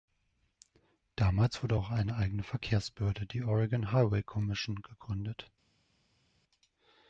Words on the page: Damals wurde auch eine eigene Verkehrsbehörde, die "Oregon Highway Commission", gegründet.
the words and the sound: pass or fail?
pass